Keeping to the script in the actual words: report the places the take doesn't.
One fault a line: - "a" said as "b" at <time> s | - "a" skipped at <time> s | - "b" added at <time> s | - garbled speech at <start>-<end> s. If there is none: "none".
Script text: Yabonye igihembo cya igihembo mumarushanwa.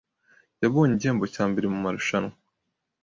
- "igihembo" said as "mbere" at 1.5 s